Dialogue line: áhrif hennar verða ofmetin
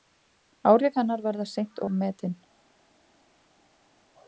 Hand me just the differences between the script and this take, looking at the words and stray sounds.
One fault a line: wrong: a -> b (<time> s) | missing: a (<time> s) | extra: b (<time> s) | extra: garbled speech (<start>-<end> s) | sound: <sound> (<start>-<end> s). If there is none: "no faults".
extra: seint (1.5 s)